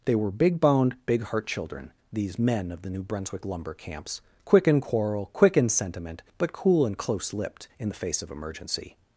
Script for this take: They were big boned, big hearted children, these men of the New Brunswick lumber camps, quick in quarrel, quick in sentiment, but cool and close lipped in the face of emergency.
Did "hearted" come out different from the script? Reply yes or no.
yes